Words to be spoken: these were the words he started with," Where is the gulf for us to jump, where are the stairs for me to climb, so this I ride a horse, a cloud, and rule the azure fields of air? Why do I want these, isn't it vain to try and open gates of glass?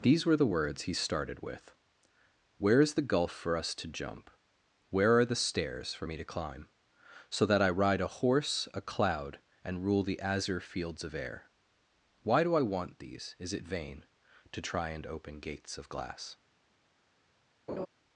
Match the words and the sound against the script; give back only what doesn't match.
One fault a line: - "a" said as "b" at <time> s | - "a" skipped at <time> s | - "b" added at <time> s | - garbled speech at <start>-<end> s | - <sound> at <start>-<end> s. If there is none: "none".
- "this" said as "that" at 7.5 s
- "isn't" said as "is" at 13.4 s
- laugh at 17.7-17.9 s